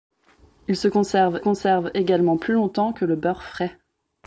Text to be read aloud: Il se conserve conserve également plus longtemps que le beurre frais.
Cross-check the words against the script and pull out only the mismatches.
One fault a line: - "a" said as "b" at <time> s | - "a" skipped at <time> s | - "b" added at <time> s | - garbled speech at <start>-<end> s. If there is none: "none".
none